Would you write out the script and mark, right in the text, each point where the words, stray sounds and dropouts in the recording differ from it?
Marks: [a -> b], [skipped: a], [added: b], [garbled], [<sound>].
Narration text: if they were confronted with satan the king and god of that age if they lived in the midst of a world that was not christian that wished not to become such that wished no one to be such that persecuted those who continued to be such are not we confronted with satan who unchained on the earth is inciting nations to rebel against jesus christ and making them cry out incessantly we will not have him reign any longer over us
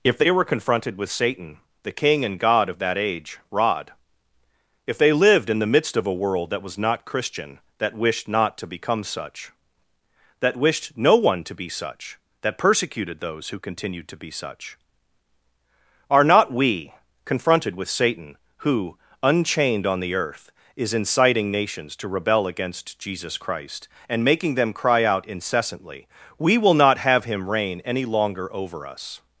if they were confronted with satan the king and god of that age [added: rod] if they lived in the midst of a world that was not christian that wished not to become such that wished no one to be such that persecuted those who continued to be such are not we confronted with satan who unchained on the earth is inciting nations to rebel against jesus christ and making them cry out incessantly we will not have him reign any longer over us